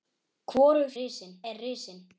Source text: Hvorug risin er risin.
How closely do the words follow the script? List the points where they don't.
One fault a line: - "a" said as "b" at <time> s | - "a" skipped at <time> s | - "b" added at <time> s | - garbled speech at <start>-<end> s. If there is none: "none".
none